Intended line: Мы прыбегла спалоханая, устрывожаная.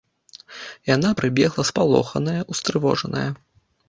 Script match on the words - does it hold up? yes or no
no